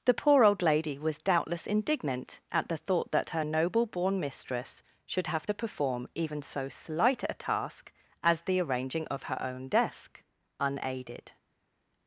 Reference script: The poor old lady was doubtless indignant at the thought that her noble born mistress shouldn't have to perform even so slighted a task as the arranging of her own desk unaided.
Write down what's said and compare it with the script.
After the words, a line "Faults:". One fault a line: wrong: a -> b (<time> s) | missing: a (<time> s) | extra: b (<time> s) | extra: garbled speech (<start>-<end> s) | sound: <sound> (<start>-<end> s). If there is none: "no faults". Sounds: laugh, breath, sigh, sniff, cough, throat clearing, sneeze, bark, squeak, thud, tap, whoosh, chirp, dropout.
The poor old lady was doubtless indignant at the thought that her noble born mistress should have to perform even so slight a task as the arranging of her own desk unaided.
Faults:
wrong: shouldn't -> should (5.0 s)
wrong: slighted -> slight (6.7 s)